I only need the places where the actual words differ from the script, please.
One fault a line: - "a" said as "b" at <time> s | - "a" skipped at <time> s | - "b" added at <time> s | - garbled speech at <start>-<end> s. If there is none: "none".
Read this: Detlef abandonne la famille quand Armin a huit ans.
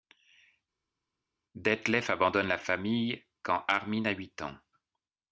none